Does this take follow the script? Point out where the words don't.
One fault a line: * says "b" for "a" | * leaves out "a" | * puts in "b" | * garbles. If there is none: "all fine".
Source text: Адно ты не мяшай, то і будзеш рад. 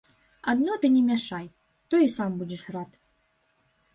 * puts in "сам"